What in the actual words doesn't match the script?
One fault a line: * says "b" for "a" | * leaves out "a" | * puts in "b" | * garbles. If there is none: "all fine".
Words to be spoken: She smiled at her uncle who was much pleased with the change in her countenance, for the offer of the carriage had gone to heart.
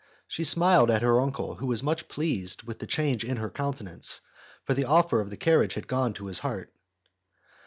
* puts in "his"